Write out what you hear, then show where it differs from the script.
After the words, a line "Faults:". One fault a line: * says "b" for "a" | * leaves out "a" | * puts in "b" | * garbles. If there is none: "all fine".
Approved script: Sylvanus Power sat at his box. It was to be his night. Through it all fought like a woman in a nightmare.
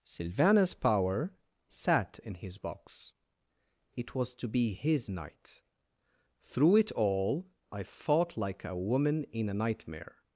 Sylvanus Power sat in his box. It was to be his night. Through it all I fought like a woman in a nightmare.
Faults:
* says "in" for "at"
* puts in "I"